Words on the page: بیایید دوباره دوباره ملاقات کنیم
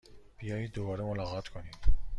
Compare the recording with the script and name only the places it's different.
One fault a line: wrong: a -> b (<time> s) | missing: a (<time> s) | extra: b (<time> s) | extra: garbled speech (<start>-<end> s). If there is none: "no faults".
missing: دوباره (1.0 s)